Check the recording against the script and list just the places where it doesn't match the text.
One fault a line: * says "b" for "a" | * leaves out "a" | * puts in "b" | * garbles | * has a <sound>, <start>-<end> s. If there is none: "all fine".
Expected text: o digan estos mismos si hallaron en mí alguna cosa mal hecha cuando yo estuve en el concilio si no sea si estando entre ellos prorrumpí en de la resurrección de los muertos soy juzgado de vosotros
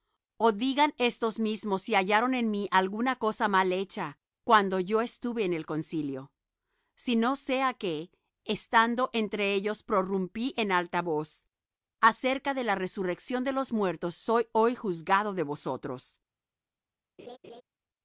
* says "que" for "si"
* puts in "alta voz acerca"
* puts in "hoy"
* has a laugh, 17.2-17.6 s